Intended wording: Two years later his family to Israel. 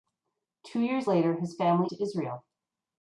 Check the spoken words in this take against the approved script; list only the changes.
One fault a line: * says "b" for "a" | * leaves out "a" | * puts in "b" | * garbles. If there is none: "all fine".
all fine